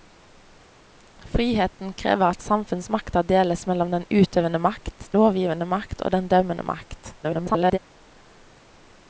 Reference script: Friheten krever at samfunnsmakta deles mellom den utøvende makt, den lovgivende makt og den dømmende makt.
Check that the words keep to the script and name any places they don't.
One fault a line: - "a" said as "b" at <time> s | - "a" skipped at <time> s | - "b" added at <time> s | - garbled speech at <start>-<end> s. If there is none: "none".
- "den" skipped at 5.1 s
- garbled speech at 7.2-7.8 s